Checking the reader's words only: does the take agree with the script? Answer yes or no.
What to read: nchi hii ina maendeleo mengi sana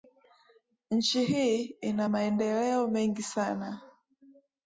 yes